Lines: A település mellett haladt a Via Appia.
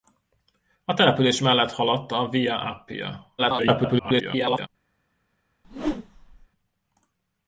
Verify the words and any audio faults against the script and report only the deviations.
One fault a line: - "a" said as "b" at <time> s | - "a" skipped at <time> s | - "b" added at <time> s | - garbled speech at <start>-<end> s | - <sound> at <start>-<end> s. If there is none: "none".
- garbled speech at 3.4-4.7 s
- whoosh at 5.6-6.5 s